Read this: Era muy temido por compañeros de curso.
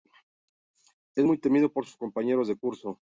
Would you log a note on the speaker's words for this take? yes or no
yes